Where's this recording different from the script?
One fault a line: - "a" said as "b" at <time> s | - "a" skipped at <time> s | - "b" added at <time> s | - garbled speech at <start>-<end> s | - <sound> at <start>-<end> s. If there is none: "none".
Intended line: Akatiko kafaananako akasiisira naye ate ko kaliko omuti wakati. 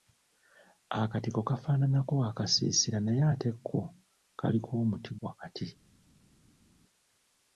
none